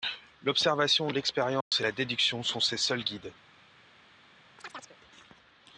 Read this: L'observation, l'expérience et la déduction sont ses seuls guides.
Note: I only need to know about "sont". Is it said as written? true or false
true